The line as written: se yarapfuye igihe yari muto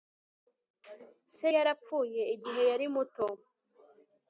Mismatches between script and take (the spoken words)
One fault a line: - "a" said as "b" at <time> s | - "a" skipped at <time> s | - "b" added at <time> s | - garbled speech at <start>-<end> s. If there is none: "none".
none